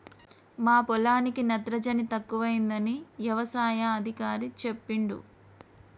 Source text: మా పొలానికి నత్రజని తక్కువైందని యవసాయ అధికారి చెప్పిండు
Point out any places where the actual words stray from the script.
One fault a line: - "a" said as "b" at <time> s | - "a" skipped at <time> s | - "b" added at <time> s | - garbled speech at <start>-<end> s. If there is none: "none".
none